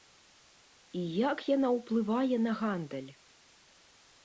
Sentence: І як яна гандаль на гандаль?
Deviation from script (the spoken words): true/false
true